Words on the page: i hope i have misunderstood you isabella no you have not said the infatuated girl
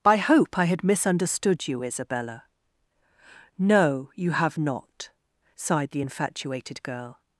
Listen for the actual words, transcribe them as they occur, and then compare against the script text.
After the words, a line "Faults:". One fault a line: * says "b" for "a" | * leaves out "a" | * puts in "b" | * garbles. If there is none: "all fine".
i hope i had misunderstood you isabella no you have not sighed the infatuated girl
Faults:
* says "had" for "have"
* says "sighed" for "said"